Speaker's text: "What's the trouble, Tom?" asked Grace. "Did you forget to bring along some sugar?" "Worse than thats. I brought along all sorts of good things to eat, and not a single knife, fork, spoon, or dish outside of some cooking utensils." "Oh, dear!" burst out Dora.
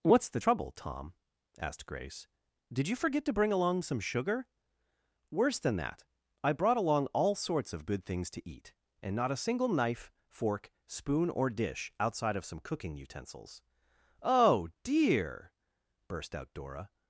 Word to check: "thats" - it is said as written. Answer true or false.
false